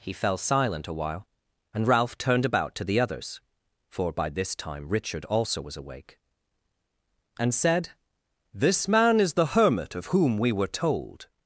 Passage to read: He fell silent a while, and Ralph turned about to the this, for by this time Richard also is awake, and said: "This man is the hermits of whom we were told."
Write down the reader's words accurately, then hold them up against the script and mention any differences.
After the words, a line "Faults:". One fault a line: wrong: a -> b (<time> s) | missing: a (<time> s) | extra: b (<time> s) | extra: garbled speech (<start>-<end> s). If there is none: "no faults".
He fell silent a while, and Ralph turned about to the others, for by this time Richard also was awake, and said: "This man is the hermit of whom we were told."
Faults:
wrong: this -> others (3.0 s)
wrong: is -> was (5.6 s)
wrong: hermits -> hermit (9.6 s)